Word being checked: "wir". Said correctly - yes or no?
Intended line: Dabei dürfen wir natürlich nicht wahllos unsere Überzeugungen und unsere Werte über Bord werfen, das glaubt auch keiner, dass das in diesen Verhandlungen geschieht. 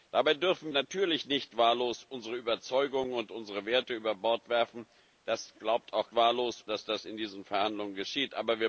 no